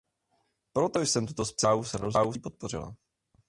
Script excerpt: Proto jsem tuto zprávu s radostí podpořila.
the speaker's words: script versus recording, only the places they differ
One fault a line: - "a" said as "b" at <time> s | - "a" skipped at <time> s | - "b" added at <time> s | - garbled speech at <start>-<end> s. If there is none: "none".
none